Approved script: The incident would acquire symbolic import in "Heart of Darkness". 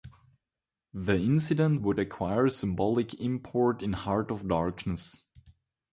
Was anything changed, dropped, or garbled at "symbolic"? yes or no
no